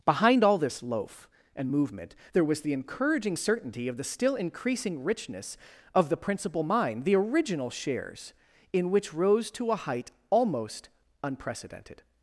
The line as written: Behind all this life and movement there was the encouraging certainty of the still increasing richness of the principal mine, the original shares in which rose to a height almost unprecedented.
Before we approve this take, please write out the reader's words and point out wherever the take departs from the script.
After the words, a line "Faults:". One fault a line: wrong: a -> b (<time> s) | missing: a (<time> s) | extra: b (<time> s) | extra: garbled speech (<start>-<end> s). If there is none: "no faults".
Behind all this loaf and movement there was the encouraging certainty of the still increasing richness of the principal mine, the original shares in which rose to a height almost unprecedented.
Faults:
wrong: life -> loaf (0.8 s)